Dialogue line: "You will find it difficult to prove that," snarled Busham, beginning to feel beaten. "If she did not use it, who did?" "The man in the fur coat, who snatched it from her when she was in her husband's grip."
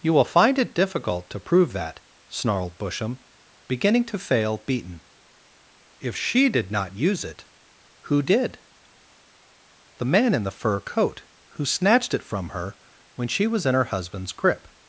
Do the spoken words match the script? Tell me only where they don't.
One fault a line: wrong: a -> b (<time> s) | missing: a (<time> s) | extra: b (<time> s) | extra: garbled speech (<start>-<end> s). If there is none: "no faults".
wrong: feel -> fail (4.2 s)